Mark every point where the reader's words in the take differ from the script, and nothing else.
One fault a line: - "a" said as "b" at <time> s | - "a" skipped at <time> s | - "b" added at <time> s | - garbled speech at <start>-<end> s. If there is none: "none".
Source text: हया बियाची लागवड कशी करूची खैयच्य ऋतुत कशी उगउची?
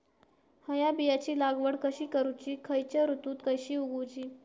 none